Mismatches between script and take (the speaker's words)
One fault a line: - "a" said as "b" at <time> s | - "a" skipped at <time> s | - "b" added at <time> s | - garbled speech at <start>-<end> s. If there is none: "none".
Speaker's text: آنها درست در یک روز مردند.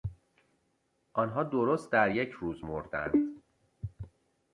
none